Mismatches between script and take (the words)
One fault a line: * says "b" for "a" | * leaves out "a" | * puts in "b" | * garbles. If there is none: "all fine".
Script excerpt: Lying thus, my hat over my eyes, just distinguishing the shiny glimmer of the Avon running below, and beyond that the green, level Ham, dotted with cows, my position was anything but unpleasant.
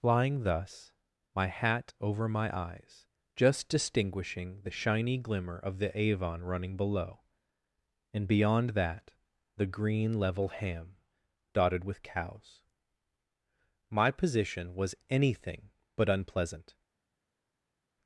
all fine